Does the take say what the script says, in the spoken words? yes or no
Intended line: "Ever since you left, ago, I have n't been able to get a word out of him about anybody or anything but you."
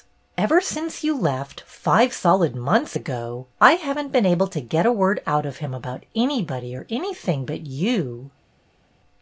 no